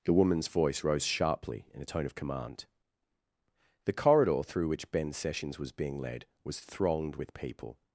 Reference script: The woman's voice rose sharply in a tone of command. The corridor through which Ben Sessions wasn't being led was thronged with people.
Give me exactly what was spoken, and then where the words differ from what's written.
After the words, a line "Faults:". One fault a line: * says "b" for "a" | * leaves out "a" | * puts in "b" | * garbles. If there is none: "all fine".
The woman's voice rose sharply in a tone of command. The corridor through which Ben Sessions was being led was thronged with people.
Faults:
* says "was" for "wasn't"